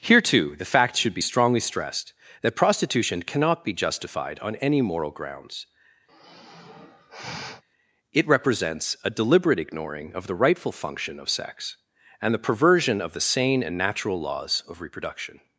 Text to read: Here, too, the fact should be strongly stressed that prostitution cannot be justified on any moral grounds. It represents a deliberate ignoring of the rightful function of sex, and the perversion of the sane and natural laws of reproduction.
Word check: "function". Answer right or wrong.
right